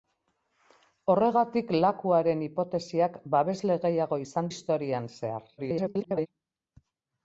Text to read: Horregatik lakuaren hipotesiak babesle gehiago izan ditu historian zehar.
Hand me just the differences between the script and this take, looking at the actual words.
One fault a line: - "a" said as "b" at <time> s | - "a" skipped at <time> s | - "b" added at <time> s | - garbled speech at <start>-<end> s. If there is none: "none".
- "ditu" skipped at 4.5 s
- garbled speech at 5.6-6.3 s